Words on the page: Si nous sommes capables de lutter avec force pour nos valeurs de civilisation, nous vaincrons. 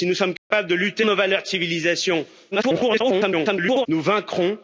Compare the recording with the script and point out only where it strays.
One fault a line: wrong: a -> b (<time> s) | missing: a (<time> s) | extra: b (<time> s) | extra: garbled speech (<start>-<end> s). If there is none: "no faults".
missing: avec force pour (1.1 s)
extra: garbled speech (2.5-3.9 s)